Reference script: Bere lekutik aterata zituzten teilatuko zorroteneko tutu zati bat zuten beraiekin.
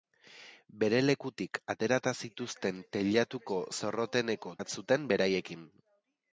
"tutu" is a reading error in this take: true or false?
true